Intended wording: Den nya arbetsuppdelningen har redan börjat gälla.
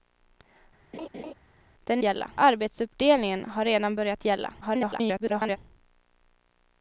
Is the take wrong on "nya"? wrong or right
wrong